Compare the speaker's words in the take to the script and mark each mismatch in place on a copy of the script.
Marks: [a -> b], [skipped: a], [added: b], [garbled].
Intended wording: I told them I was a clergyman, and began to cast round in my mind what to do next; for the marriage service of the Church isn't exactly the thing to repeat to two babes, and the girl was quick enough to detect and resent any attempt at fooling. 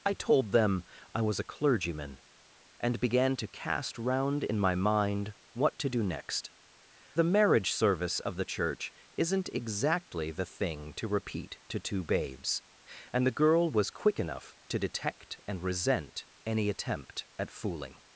I told them I was a clergyman, and began to cast round in my mind what to do next; [skipped: for] the marriage service of the Church isn't exactly the thing to repeat to two babes, and the girl was quick enough to detect and resent any attempt at fooling.